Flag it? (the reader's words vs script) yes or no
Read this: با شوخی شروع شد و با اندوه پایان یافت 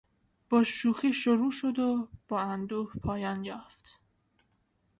no